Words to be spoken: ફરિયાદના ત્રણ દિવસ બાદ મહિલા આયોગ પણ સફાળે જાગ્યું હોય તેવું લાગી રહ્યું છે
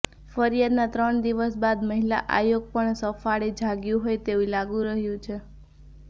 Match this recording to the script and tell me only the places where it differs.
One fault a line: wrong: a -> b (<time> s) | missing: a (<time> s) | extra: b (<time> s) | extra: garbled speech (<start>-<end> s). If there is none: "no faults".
no faults